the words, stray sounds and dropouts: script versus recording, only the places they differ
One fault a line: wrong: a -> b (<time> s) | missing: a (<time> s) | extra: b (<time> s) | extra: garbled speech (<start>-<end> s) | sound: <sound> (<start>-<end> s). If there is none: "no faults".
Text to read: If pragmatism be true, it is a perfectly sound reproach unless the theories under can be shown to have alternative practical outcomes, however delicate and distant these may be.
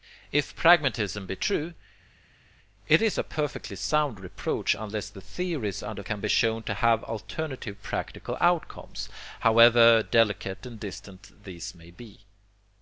no faults